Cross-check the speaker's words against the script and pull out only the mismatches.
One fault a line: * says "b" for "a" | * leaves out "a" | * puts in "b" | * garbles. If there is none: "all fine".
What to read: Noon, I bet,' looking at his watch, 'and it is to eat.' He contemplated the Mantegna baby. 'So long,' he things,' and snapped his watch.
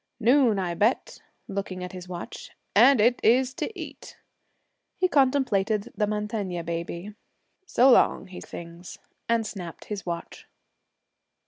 all fine